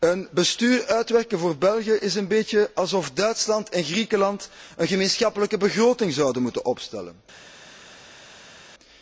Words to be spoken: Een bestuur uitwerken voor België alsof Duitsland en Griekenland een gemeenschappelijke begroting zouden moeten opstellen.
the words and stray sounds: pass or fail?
fail